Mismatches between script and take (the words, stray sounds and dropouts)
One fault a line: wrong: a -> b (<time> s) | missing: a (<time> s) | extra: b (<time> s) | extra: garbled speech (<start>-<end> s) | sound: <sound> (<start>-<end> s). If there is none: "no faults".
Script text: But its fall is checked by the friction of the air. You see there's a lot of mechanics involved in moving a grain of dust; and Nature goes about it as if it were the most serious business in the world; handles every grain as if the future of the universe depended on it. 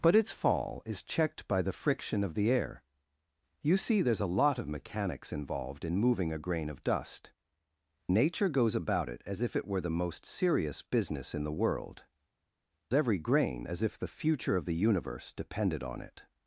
missing: and (7.3 s)
missing: handles (12.1 s)